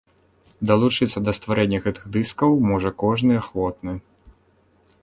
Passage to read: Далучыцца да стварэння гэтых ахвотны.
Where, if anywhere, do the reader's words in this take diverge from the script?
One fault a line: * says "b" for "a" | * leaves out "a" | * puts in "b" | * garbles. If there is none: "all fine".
* puts in "дыскаў можа кожны"